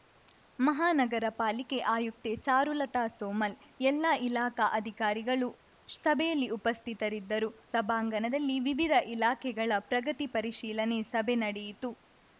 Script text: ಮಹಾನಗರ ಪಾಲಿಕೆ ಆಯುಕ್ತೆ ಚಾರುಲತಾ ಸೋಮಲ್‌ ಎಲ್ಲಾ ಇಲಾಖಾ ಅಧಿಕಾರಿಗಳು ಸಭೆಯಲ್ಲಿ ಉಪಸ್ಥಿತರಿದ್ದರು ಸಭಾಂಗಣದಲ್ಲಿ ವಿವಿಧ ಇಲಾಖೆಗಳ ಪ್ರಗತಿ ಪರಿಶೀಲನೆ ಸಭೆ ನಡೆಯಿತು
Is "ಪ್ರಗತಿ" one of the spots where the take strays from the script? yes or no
no